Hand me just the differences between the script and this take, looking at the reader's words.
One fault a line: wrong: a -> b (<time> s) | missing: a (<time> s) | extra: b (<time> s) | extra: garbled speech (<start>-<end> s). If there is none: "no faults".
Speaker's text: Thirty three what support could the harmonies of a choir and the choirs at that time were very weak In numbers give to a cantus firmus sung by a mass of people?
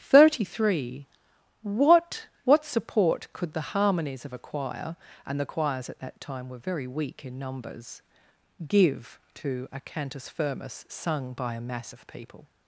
extra: what (2.4 s)